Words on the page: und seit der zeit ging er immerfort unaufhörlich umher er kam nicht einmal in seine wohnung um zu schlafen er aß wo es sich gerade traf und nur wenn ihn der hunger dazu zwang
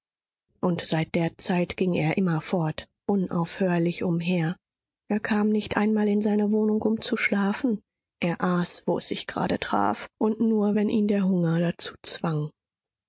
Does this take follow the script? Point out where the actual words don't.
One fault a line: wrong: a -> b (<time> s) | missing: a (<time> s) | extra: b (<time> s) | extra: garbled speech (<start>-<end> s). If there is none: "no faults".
no faults